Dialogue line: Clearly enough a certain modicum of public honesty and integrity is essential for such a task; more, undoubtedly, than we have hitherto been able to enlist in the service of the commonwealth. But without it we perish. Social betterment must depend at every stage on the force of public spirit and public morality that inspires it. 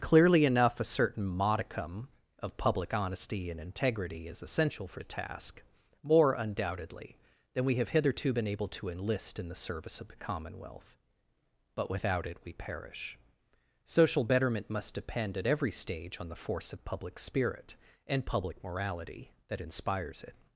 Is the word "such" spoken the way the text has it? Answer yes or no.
no